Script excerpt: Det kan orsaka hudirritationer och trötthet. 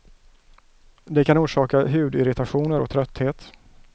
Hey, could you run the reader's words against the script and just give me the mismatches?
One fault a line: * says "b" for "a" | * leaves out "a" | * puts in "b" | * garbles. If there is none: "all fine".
all fine